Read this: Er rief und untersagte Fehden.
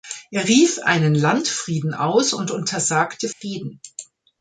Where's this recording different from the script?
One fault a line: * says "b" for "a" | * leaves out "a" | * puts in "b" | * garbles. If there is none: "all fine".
* puts in "einen Landfrieden aus"